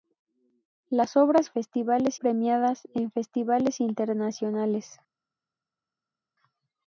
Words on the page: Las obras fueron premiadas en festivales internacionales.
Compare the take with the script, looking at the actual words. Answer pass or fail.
fail